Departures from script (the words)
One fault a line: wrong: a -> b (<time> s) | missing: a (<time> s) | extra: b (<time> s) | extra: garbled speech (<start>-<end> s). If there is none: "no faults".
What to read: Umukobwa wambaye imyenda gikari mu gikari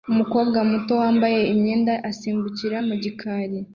extra: muto (0.7 s)
wrong: gikari -> asimbukira (2.1 s)